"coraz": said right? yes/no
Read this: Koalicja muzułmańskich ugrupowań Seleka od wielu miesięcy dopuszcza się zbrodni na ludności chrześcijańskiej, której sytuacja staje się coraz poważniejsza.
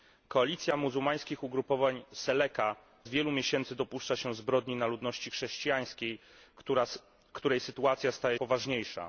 no